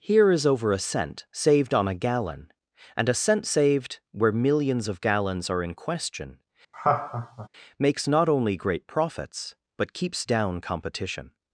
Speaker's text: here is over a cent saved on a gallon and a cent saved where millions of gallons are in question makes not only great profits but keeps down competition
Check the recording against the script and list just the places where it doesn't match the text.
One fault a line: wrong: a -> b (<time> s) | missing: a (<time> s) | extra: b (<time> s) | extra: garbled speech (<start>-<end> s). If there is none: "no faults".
no faults